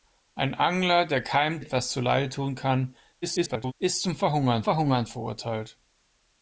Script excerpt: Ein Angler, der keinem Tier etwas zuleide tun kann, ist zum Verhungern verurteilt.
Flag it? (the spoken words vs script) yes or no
yes